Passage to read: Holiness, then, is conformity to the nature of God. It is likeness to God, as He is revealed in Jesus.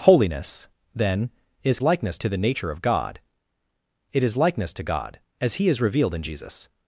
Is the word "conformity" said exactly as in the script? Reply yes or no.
no